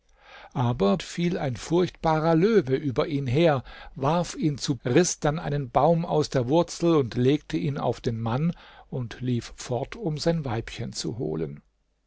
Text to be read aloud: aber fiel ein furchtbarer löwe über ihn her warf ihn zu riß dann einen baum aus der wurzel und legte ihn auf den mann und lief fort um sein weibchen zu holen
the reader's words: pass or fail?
pass